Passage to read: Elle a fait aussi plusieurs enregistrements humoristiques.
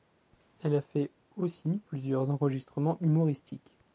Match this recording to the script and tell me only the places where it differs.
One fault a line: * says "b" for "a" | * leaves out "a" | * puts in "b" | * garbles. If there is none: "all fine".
all fine